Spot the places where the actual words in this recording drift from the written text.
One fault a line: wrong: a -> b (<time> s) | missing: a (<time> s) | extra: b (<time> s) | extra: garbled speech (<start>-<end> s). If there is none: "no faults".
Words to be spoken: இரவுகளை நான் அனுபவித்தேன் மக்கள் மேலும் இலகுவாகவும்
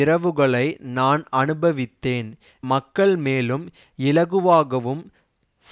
no faults